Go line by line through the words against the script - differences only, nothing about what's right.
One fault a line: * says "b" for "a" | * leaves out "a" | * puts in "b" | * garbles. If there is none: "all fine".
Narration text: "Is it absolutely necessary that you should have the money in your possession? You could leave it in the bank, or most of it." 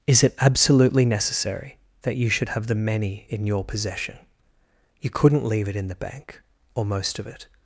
* says "many" for "money"
* says "couldn't" for "could"